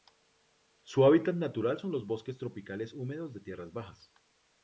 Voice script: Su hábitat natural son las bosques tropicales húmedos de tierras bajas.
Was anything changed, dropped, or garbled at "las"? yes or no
yes